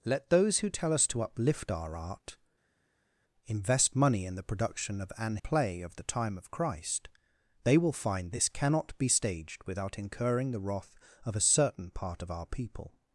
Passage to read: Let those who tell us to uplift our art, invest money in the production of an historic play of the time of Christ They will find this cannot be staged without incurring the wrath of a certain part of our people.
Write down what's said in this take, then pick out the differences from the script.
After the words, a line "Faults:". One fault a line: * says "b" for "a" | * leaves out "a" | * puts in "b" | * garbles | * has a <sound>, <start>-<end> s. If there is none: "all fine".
Let those who tell us to uplift our art, invest money in the production of an play of the time of Christ They will find this cannot be staged without incurring the wrath of a certain part of our people.
Faults:
* leaves out "historic"